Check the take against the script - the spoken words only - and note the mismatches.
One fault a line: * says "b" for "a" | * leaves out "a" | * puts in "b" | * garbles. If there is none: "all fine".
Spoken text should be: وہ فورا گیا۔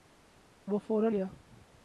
all fine